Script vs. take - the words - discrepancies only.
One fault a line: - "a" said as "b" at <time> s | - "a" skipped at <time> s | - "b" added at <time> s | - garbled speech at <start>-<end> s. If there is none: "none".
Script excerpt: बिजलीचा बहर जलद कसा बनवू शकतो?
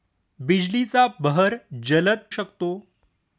- "कसा बनवू" skipped at 2.2 s